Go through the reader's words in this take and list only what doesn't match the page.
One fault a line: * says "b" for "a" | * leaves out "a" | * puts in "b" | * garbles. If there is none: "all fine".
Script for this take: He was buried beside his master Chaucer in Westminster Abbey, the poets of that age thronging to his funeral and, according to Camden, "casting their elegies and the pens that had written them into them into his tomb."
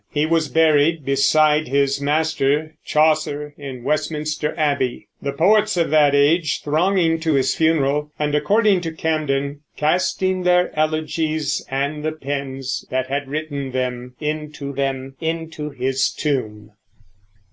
all fine